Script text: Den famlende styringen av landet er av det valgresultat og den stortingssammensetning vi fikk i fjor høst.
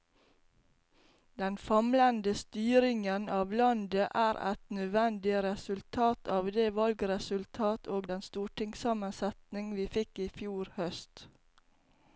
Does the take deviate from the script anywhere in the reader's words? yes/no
yes